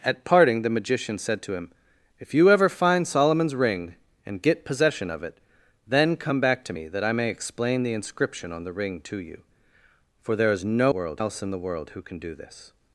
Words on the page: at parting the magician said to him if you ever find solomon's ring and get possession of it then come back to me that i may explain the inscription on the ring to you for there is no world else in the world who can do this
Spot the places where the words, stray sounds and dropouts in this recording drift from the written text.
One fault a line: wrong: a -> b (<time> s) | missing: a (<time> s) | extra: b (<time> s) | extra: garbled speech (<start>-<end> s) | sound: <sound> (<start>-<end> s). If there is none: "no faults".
no faults